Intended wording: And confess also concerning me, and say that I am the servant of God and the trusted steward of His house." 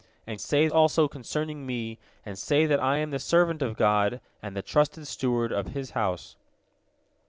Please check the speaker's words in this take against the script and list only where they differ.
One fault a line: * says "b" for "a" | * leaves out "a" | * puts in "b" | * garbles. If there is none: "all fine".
* says "say" for "confess"